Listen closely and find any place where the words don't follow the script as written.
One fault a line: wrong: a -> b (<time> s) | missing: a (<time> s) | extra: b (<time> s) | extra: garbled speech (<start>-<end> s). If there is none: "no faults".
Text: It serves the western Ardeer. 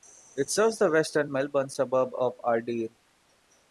extra: Melbourne suburb of (1.3 s)